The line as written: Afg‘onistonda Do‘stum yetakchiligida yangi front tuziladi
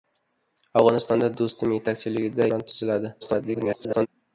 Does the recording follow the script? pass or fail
fail